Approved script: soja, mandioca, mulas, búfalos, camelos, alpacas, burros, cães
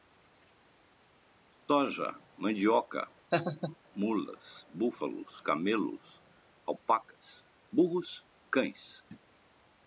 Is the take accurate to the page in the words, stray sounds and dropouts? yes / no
no